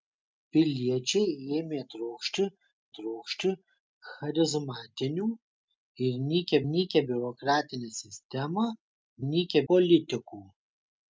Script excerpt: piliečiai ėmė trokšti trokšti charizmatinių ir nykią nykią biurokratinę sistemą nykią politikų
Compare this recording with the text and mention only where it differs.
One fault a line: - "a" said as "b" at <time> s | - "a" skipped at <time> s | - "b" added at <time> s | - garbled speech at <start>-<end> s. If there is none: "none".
none